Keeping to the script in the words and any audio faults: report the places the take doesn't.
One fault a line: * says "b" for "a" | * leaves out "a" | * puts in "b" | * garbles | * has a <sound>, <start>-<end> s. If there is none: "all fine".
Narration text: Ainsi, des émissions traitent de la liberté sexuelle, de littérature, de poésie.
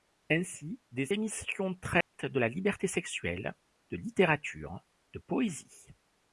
* has a dropout, 2.0-2.1 s